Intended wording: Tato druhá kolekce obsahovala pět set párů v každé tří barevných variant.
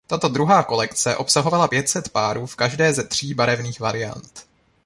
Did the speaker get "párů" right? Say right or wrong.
right